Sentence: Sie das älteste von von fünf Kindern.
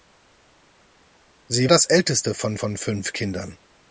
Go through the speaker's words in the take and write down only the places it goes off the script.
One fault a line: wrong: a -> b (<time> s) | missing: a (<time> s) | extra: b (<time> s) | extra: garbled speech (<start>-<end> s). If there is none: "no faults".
no faults